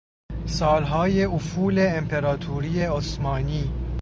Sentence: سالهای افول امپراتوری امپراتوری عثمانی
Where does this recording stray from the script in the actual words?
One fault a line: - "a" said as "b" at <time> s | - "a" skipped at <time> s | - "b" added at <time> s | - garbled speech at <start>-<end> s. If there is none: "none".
- "امپراتوری" skipped at 2.8 s